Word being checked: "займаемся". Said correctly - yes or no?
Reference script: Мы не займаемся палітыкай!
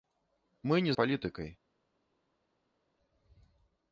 no